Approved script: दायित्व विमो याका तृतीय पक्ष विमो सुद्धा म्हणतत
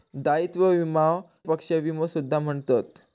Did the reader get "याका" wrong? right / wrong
wrong